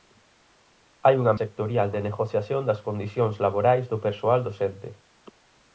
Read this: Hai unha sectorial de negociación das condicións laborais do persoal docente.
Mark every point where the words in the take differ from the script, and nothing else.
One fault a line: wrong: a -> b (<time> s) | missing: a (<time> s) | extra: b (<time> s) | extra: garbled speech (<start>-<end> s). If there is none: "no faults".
no faults